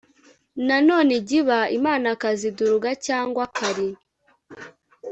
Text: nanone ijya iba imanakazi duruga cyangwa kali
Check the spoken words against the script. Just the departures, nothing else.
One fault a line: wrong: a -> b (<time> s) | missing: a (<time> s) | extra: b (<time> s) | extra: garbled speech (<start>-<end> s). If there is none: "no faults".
no faults